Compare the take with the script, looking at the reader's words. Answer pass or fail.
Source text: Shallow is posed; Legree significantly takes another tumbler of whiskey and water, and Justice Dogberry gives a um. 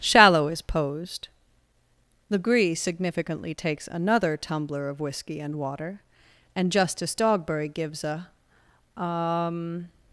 pass